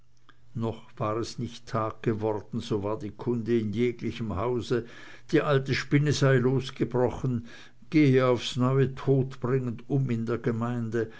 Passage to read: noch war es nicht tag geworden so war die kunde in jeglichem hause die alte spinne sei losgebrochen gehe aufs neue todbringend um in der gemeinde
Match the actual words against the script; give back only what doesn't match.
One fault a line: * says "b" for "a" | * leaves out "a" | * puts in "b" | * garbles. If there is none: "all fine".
all fine